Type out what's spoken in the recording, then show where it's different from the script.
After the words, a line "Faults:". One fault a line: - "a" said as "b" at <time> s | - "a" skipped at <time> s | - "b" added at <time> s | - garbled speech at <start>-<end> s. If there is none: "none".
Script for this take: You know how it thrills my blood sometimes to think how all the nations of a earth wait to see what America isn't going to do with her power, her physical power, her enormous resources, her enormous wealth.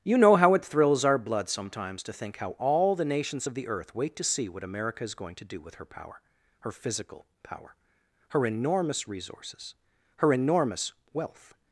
You know how it thrills our blood sometimes to think how all the nations of the earth wait to see what America is going to do with her power, her physical power, her enormous resources, her enormous wealth.
Faults:
- "my" said as "our" at 1.1 s
- "a" said as "the" at 3.5 s
- "isn't" said as "is" at 5.0 s